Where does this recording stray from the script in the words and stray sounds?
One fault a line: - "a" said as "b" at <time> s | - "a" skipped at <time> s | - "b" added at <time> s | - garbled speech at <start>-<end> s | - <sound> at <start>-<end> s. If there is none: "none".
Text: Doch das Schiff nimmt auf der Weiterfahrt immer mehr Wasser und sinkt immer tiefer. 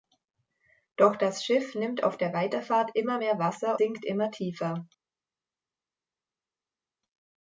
- "und" skipped at 3.8 s